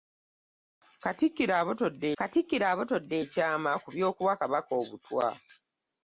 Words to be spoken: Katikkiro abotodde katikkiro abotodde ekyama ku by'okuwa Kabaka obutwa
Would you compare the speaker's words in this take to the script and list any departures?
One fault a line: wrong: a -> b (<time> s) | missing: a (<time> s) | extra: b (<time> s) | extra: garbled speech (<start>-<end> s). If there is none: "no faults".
no faults